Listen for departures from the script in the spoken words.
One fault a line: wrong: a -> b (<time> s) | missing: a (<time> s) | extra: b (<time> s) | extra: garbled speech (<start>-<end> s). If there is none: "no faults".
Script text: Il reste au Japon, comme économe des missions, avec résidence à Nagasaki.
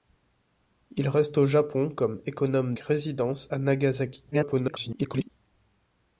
missing: des missions avec (2.8 s)
extra: garbled speech (4.3-5.3 s)